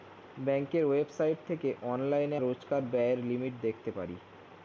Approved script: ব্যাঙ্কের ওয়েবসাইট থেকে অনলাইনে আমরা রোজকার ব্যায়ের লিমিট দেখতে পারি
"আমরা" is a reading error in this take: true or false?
true